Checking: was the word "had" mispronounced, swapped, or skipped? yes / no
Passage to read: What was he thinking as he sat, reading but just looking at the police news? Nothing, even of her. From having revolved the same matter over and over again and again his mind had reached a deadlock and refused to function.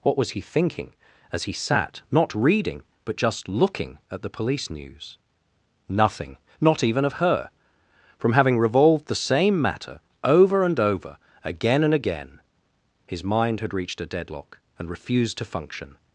no